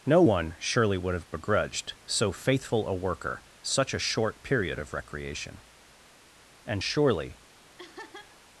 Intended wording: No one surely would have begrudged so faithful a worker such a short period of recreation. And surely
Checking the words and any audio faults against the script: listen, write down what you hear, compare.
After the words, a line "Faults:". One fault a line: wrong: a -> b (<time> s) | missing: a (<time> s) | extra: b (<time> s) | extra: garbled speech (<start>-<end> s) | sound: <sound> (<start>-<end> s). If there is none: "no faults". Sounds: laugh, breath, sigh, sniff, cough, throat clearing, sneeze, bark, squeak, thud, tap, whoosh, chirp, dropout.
No one surely would have begrudged so faithful a worker such a short period of recreation. And surely
Faults:
sound: laugh (7.8-8.4 s)